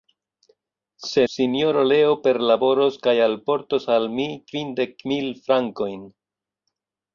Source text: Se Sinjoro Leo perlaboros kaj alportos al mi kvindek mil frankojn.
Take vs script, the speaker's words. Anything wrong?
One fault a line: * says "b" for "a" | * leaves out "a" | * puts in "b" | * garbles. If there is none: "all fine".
all fine